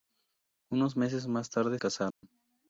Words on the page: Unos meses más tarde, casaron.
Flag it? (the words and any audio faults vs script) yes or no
yes